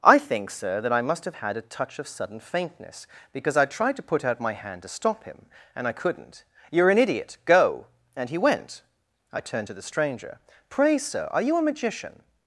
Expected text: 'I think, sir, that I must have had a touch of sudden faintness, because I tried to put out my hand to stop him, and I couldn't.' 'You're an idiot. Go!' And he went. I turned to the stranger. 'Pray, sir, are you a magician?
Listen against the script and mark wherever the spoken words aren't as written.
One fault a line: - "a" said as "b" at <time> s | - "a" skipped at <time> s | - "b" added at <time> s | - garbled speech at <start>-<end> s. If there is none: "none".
none